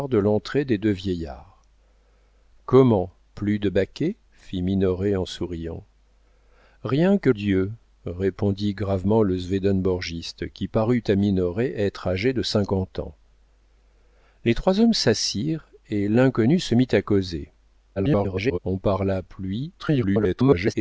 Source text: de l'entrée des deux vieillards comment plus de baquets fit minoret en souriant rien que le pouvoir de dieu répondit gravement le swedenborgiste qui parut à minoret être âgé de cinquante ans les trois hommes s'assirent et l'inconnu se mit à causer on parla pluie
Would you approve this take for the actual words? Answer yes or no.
no